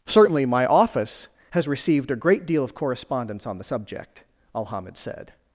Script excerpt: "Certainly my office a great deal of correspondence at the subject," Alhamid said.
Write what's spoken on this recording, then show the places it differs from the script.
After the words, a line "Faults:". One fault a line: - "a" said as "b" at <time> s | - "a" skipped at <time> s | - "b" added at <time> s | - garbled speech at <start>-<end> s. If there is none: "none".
"Certainly my office has received a great deal of correspondence on the subject," Alhamid said.
Faults:
- "has received" added at 1.5 s
- "at" said as "on" at 3.5 s